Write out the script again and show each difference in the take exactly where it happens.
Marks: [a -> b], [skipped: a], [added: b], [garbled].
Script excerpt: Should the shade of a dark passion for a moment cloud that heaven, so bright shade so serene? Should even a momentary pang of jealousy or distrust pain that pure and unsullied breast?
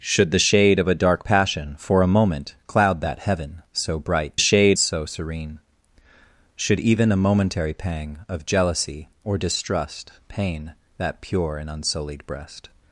Should the shade of a dark passion for a moment cloud that heaven, so bright shade so serene? Should even a momentary pang of jealousy or distrust pain that pure and unsullied breast?